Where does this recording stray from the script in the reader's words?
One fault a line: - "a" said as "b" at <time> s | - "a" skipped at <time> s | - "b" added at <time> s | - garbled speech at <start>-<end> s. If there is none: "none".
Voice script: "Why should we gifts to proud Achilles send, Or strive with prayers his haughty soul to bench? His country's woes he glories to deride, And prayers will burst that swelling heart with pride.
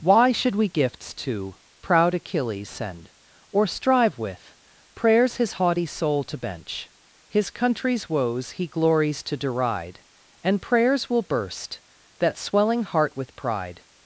none